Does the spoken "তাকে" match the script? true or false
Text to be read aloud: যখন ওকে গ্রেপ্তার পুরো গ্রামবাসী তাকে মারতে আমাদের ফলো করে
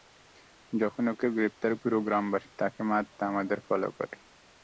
true